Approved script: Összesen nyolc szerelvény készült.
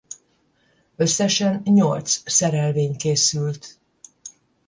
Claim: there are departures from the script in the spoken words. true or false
false